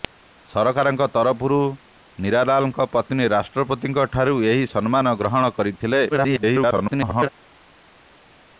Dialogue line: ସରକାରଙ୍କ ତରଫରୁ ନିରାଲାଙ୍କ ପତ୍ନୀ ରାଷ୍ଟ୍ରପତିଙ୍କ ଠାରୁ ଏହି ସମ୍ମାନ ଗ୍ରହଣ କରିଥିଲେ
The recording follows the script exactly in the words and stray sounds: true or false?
false